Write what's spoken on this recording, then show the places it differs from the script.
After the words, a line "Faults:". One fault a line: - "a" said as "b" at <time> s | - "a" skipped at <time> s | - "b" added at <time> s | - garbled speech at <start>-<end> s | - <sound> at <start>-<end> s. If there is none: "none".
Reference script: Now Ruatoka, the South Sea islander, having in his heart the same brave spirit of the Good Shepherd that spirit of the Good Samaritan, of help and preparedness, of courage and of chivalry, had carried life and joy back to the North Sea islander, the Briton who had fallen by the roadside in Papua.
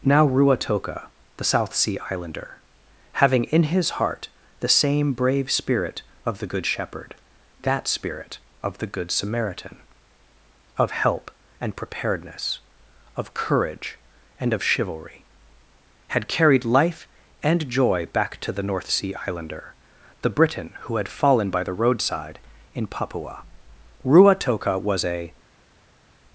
Now Ruatoka, the South Sea islander, having in his heart the same brave spirit of the Good Shepherd that spirit of the Good Samaritan, of help and preparedness, of courage and of chivalry, had carried life and joy back to the North Sea islander, the Briton who had fallen by the roadside in Papua. Ruatoka was a
Faults:
- "Ruatoka was a" added at 24.0 s